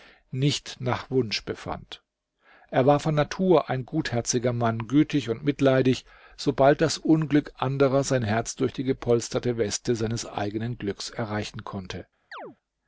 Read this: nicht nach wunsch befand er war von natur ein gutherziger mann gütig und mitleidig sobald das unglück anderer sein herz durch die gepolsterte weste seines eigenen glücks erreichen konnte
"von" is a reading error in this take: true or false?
false